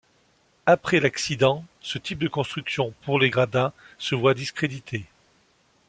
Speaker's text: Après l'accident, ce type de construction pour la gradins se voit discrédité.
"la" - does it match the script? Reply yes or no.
no